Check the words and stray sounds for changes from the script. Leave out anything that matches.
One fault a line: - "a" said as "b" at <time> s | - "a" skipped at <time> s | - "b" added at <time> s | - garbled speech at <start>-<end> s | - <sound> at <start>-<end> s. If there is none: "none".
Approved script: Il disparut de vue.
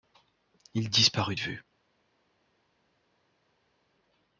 none